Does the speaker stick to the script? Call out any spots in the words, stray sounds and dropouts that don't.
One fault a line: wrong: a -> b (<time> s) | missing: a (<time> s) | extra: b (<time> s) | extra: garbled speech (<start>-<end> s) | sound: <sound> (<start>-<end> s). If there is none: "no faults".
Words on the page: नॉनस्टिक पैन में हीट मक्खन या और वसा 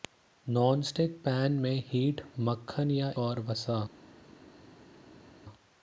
no faults